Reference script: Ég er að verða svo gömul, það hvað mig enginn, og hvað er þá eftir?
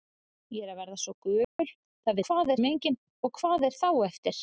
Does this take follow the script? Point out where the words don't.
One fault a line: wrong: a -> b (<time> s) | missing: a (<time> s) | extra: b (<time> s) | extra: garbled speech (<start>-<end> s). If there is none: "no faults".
no faults